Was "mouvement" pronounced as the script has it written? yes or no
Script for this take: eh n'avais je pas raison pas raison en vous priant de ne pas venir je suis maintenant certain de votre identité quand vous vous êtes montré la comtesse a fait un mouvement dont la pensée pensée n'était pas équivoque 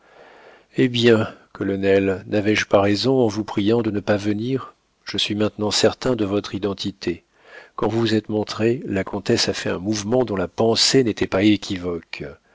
yes